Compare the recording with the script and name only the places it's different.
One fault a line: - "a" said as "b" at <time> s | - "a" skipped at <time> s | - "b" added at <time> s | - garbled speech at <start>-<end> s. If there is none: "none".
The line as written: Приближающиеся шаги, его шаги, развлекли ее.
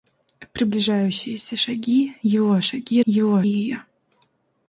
- "развлекли" said as "его" at 3.1 s